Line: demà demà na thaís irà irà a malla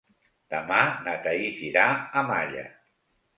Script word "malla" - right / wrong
right